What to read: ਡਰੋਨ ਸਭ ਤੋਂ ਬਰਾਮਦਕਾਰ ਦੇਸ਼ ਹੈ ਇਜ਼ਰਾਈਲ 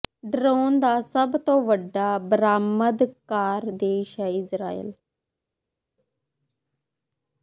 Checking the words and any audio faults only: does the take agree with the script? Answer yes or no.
no